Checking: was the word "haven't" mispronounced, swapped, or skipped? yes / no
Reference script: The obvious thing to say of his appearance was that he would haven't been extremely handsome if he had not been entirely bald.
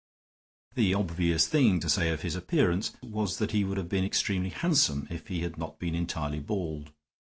yes